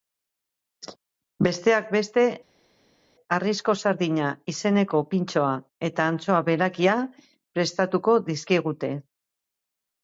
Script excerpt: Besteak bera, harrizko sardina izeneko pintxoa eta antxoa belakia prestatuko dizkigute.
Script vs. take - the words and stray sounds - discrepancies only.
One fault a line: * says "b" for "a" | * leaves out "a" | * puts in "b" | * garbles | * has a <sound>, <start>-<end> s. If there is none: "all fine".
* says "beste" for "bera"